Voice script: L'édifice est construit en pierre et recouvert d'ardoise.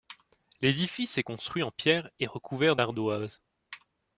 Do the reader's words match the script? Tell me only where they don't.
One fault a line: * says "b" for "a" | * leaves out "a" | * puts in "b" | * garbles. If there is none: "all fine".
all fine